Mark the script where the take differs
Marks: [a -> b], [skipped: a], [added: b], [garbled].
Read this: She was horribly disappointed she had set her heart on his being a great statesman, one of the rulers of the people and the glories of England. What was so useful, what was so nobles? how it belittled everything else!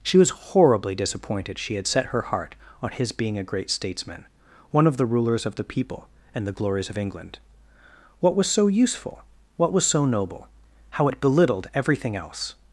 She was horribly disappointed she had set her heart on his being a great statesman, one of the rulers of the people and the glories of England. What was so useful, what was so [nobles? -> noble] how it belittled everything else!